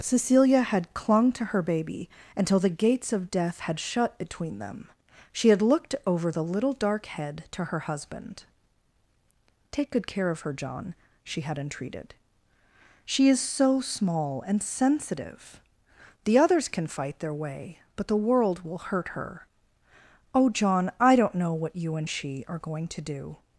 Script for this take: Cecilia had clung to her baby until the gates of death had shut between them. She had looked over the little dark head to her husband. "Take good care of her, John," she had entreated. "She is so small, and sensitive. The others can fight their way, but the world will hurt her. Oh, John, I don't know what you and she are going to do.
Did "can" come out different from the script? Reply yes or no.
no